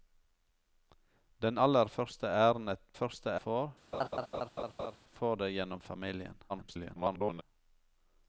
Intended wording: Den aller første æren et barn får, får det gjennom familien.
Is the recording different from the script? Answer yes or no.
yes